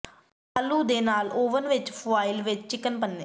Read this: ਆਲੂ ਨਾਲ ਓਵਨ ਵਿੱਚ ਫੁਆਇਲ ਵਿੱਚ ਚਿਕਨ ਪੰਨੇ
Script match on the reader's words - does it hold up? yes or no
no